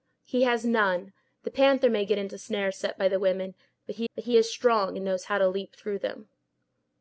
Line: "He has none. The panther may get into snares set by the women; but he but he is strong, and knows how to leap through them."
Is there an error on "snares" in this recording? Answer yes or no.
no